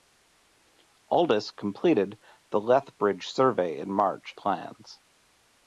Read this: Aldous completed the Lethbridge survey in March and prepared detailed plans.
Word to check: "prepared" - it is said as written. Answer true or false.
false